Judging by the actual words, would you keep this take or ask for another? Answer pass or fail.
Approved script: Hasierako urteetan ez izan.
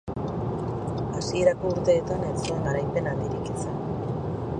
fail